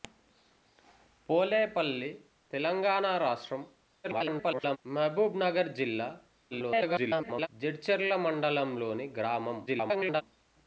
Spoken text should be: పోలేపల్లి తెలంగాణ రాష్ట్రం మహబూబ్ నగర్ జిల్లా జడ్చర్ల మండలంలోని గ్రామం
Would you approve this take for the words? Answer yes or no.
no